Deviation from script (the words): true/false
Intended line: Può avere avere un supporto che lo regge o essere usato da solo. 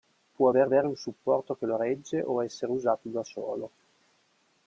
false